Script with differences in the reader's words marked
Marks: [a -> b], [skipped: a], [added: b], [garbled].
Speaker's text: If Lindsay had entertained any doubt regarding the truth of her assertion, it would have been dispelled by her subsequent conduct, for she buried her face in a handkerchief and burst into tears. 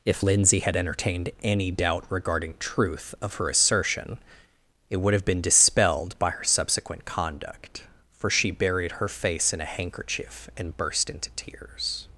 If Lindsay had entertained any doubt regarding [skipped: the] truth of her assertion, it would have been dispelled by her subsequent conduct, for she buried her face in a handkerchief and burst into tears.